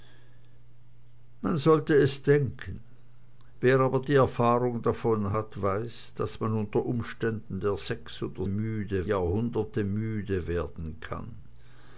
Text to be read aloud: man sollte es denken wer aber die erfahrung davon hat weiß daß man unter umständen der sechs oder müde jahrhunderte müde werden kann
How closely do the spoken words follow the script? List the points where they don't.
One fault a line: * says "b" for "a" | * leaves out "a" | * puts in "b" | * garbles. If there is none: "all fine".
all fine